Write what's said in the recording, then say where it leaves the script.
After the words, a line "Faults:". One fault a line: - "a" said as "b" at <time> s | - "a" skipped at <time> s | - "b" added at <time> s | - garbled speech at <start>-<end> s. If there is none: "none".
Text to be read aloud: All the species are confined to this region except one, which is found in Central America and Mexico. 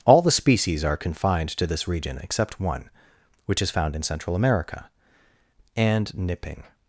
All the species are confined to this region except one, which is found in Central America and Nipping.
Faults:
- "Mexico" said as "Nipping" at 6.1 s